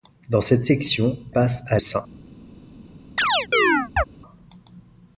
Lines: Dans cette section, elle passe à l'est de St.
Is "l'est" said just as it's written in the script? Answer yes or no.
no